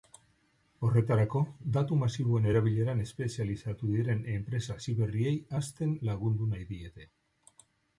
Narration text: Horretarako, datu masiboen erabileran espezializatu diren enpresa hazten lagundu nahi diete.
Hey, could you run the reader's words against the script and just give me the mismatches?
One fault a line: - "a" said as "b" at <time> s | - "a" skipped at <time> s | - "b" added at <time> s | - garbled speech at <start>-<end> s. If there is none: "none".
- "hasiberriei" added at 4.8 s